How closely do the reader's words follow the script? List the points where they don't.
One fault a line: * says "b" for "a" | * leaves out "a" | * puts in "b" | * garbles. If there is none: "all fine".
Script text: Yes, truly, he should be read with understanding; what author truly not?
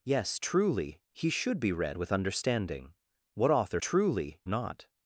all fine